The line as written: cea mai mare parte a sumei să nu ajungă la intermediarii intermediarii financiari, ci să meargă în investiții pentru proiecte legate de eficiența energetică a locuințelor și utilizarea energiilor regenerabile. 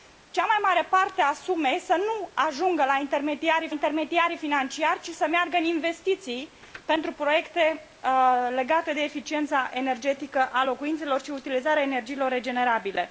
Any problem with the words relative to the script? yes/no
no